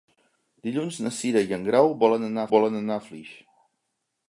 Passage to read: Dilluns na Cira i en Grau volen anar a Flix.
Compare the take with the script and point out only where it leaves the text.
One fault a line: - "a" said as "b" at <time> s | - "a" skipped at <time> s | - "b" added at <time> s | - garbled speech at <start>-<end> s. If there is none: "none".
- "volen anar" added at 2.6 s